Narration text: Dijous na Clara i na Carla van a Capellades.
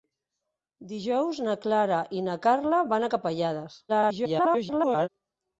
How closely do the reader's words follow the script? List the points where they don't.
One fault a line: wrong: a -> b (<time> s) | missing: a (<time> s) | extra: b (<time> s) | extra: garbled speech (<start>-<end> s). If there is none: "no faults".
extra: garbled speech (3.9-5.1 s)